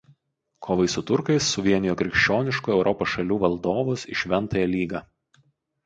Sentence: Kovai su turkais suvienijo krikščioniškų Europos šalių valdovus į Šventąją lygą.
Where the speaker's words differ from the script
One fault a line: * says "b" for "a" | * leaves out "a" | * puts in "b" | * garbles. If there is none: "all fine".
all fine